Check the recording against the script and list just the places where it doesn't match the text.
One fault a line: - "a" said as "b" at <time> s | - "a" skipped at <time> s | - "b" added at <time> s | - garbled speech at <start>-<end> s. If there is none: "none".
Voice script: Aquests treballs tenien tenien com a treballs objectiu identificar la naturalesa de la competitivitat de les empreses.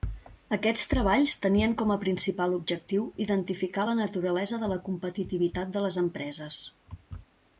- "tenien" skipped at 1.8 s
- "treballs" said as "principal" at 2.0 s